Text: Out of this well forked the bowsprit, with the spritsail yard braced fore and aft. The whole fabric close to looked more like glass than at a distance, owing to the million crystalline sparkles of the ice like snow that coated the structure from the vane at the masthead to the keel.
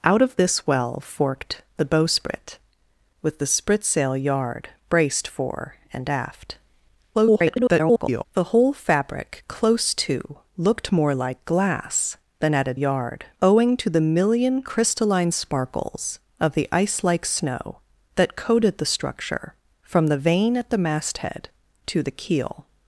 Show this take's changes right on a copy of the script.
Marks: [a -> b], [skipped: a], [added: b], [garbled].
Out of this well forked the bowsprit, with the spritsail yard braced fore and aft. [garbled] The whole fabric close to looked more like glass than at a [distance, -> yard] owing to the million crystalline sparkles of the ice like snow that coated the structure from the vane at the masthead to the keel.